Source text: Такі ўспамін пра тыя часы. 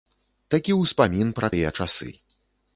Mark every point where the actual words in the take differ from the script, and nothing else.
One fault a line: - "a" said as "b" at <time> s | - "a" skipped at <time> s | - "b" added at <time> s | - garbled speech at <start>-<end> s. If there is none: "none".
none